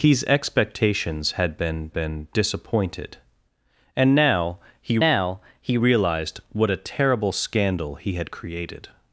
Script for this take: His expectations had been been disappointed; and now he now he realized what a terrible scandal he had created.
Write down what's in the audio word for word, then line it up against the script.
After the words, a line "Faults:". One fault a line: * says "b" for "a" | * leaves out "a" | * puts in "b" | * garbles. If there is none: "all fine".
His expectations had been been disappointed; and now he now he realized what a terrible scandal he had created.
Faults:
all fine